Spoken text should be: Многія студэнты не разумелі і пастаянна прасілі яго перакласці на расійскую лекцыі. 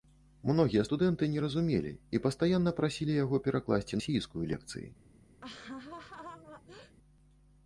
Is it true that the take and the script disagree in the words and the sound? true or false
true